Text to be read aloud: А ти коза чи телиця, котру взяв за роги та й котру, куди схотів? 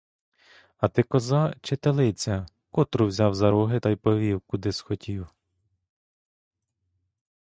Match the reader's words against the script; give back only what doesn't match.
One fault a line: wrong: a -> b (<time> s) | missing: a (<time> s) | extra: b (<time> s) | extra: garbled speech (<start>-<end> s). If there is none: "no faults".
wrong: котру -> повів (4.0 s)